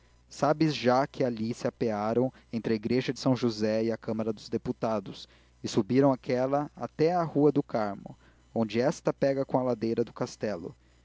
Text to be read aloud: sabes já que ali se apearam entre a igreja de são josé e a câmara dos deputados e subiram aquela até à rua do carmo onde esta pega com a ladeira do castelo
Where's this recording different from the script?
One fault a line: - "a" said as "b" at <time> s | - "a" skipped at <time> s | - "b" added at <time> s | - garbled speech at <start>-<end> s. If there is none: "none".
none